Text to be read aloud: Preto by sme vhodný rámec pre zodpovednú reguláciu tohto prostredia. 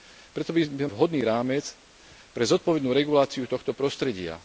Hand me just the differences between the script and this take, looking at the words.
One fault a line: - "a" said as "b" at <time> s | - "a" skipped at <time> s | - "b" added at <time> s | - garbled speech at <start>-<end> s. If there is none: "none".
none